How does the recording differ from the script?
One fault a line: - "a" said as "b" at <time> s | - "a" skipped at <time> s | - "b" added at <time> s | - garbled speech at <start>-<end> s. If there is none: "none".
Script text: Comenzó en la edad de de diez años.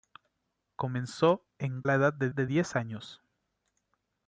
none